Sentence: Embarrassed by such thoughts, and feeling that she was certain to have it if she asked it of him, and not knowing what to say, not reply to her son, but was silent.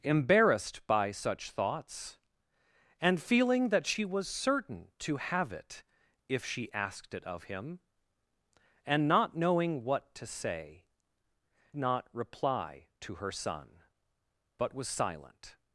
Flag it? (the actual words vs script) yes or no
no